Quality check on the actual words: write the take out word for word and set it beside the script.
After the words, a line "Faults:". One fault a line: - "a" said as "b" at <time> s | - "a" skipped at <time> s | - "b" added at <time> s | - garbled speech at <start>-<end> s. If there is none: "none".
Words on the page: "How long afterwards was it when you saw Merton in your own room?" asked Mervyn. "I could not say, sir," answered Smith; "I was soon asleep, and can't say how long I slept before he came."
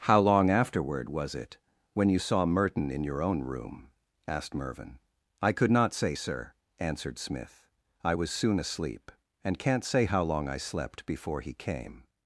"How long afterward was it when you saw Merton in your own room?" asked Mervyn. "I could not say, sir," answered Smith; "I was soon asleep, and can't say how long I slept before he came."
Faults:
- "afterwards" said as "afterward" at 0.5 s